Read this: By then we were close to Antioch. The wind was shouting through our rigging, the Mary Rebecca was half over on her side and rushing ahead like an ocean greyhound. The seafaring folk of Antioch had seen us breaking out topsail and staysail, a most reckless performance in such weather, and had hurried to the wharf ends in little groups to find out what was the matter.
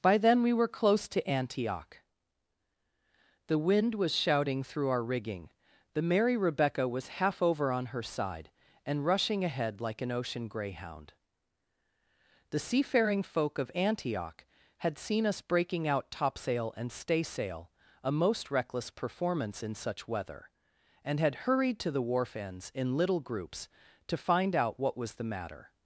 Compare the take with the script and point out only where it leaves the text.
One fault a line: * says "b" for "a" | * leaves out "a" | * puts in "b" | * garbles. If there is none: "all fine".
all fine